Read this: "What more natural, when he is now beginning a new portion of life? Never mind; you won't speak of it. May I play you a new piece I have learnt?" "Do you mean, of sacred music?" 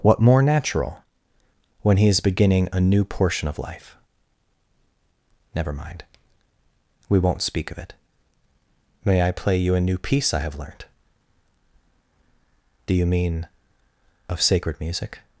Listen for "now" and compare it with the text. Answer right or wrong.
wrong